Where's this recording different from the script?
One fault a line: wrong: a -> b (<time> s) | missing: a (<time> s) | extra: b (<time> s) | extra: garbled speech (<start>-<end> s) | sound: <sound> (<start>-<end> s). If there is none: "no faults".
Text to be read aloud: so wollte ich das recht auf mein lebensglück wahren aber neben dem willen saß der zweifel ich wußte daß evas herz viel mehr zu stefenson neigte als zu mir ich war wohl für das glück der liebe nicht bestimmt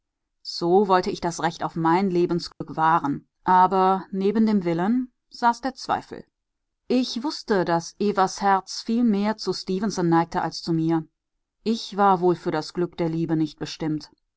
sound: dropout (2.5-2.6 s)